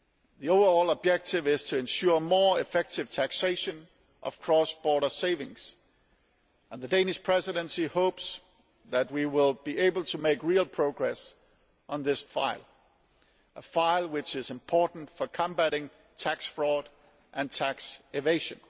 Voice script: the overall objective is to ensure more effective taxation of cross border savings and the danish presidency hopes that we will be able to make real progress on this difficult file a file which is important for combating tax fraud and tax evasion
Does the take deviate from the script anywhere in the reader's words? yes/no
yes